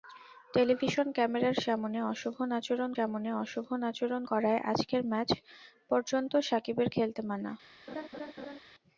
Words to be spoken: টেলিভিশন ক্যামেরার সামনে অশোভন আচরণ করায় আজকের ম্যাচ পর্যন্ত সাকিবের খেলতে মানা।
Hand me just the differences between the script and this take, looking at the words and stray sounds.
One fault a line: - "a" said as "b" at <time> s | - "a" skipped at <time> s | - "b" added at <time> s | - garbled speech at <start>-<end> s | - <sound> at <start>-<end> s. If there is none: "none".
- "সামনে অশোভন আচরণ" added at 3.0 s
- laugh at 7.9-8.6 s